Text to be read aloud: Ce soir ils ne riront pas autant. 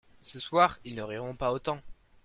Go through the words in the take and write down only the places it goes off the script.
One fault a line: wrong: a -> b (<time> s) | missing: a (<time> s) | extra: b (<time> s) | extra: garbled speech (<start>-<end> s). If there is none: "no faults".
no faults